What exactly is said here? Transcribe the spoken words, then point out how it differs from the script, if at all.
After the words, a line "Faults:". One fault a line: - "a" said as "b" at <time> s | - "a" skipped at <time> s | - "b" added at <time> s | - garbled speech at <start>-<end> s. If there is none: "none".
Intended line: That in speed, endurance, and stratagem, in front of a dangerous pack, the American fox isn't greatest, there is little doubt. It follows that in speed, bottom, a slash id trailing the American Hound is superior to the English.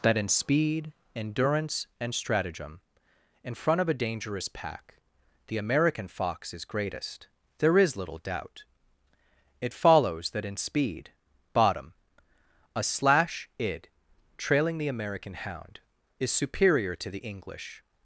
That in speed, endurance, and stratagem, in front of a dangerous pack, the American fox is greatest, there is little doubt. It follows that in speed, bottom, a slash id trailing the American Hound is superior to the English.
Faults:
- "isn't" said as "is" at 6.5 s